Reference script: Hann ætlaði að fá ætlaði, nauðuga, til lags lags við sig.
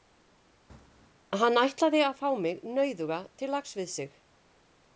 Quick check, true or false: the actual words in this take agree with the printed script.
false